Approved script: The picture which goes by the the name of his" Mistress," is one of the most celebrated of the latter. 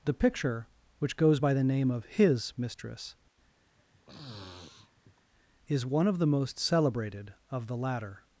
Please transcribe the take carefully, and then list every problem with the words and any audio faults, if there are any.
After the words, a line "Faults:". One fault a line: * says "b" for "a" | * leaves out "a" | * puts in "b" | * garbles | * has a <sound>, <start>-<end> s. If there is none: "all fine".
The picture which goes by the name of his" Mistress," is one of the most celebrated of the latter.
Faults:
* leaves out "the"
* has a sniff, 3.7-5.2 s